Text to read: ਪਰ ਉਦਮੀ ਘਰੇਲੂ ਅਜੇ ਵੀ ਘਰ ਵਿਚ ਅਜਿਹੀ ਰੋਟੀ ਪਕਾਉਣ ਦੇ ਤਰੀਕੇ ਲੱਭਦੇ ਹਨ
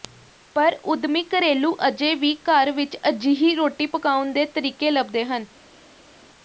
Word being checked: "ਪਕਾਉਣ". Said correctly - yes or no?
yes